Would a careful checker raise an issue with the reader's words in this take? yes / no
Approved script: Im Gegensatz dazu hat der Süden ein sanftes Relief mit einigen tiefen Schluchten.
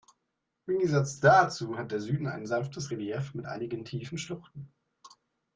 no